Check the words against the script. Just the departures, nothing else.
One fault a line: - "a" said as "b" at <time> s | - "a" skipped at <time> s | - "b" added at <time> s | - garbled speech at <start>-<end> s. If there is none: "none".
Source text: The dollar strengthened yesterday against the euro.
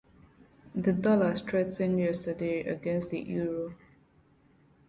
none